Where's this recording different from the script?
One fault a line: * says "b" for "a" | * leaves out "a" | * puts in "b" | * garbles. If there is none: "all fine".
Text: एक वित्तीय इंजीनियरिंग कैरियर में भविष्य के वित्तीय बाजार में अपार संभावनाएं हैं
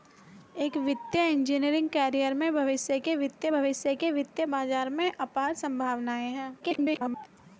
* puts in "भविष्य के वित्तीय"
* garbles